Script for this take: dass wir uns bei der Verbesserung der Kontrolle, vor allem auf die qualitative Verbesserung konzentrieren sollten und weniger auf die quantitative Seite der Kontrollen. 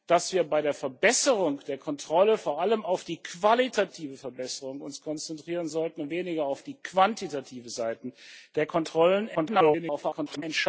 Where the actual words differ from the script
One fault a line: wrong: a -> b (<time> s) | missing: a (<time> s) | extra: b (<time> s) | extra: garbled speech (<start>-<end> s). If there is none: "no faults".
extra: garbled speech (9.4-10.4 s)